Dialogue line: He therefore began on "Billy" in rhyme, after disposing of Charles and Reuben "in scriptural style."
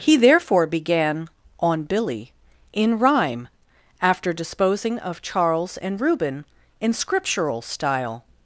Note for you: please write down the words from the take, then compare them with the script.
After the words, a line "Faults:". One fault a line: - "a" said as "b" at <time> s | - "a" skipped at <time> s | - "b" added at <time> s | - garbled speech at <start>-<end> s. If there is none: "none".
He therefore began on "Billy" in rhyme, after disposing of Charles and Reuben "in scriptural style."
Faults:
none